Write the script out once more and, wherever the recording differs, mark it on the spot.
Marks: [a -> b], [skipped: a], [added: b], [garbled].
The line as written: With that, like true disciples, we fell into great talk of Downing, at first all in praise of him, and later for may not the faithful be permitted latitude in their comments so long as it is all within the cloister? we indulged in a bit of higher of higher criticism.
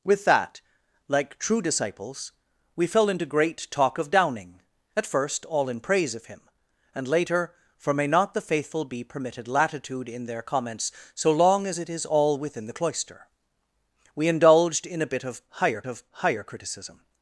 With that, like true disciples, we fell into great talk of Downing, at first all in praise of him, and later for may not the faithful be permitted latitude in their comments so long as it is all within the cloister? we indulged in a bit of higher of higher criticism.